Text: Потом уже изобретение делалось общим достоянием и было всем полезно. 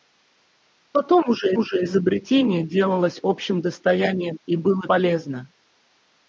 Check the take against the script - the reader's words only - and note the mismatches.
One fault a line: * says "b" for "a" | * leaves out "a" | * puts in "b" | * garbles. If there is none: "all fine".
* puts in "уже"
* leaves out "всем"